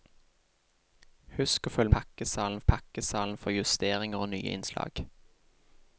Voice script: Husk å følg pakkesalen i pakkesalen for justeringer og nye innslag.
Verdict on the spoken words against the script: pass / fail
pass